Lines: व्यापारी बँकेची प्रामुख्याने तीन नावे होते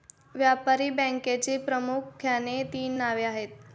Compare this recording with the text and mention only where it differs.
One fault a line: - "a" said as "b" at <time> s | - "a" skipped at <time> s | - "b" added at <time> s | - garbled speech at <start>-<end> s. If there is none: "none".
- "होते" said as "आहेत" at 3.2 s